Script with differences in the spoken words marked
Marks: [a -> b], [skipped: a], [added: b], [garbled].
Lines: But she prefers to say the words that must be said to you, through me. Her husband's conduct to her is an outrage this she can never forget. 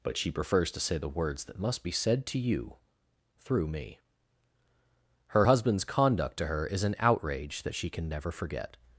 But she prefers to say the words that must be said to you, through me. Her husband's conduct to her is an outrage [this -> that] she can never forget.